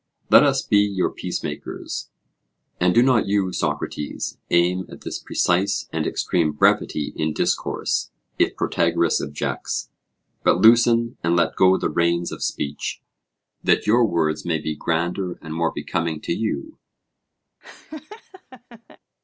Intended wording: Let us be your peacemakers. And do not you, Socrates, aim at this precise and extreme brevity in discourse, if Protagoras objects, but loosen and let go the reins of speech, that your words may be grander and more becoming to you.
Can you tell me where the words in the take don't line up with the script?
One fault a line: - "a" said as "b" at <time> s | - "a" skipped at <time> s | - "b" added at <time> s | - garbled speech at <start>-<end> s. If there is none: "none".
none